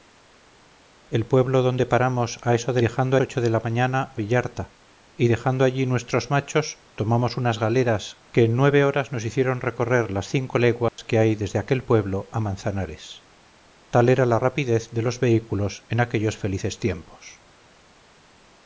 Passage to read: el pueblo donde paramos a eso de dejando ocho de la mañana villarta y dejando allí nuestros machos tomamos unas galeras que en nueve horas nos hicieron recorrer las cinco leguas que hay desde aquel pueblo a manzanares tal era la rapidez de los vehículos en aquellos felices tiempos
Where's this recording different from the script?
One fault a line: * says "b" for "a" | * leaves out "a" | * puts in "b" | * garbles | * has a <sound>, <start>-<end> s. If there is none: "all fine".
* has a dropout, 10.9-11.0 s